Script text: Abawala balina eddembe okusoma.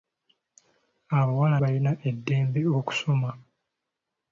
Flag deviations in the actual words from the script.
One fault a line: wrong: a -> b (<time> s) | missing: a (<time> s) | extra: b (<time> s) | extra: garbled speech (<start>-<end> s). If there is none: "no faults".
no faults